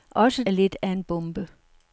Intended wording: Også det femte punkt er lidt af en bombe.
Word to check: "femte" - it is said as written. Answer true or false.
false